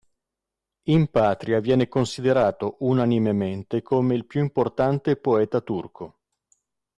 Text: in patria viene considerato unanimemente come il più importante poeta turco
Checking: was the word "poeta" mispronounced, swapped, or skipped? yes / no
no